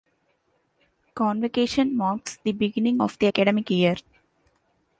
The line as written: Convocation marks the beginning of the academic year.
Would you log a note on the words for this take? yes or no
no